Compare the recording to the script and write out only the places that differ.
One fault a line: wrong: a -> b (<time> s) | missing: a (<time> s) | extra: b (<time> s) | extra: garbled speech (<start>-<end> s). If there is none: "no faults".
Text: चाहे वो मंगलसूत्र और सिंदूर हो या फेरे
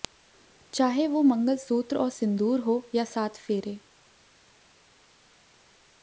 extra: सात (3.0 s)